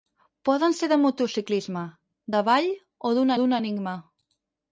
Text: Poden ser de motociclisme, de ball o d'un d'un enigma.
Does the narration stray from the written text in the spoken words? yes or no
no